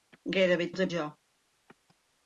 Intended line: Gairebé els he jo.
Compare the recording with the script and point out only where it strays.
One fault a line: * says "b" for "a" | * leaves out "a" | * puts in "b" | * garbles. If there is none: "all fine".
all fine